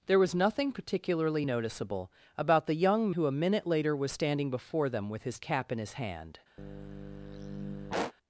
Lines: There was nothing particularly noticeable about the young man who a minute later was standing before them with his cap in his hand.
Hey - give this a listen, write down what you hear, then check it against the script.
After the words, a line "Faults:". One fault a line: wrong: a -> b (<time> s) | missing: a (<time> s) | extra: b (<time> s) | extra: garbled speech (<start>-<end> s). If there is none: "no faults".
There was nothing particularly noticeable about the young who a minute later was standing before them with his cap in his hand.
Faults:
missing: man (3.1 s)